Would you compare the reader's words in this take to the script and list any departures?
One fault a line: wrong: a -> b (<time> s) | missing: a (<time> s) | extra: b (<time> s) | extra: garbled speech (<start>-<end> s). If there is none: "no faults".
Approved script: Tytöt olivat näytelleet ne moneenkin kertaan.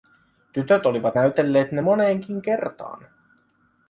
no faults